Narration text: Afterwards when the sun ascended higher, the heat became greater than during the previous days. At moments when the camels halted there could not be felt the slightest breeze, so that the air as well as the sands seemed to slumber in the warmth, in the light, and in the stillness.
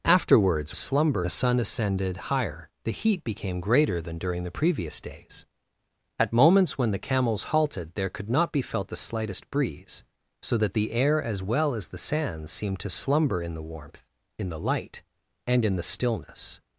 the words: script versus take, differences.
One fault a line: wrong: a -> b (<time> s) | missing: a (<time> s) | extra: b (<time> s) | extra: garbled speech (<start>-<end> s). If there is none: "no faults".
wrong: when -> slumber (0.7 s)